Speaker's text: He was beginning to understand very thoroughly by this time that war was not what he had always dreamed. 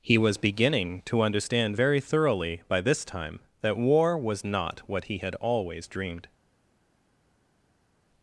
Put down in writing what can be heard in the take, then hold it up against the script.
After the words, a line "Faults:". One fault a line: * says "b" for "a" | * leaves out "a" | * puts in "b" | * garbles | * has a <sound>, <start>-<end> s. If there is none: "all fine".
He was beginning to understand very thoroughly by this time that war was not what he had always dreamed.
Faults:
all fine